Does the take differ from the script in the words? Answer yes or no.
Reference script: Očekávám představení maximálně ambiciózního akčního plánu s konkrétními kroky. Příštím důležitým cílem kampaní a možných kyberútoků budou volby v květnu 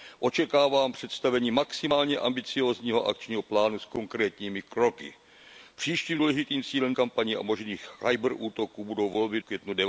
no